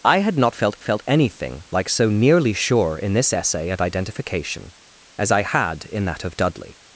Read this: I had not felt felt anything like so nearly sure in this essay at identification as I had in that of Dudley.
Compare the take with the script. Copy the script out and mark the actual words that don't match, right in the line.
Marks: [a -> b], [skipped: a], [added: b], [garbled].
I had not felt felt anything like so nearly sure in this essay at identification as I had in that of Dudley.